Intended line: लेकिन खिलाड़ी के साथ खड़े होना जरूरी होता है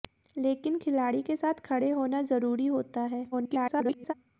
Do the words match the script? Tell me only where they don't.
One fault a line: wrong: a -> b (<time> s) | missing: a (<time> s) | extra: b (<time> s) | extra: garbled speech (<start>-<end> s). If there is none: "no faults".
extra: garbled speech (3.3-4.1 s)